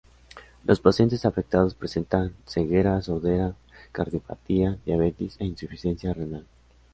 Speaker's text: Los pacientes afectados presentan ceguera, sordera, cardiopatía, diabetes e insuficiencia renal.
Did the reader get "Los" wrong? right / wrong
right